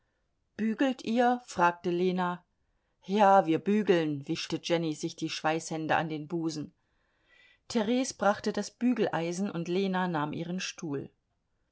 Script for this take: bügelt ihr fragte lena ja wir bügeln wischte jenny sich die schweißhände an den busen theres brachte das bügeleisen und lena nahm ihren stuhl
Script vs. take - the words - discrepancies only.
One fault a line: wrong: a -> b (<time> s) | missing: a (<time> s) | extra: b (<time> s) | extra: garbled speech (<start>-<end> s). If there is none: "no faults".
no faults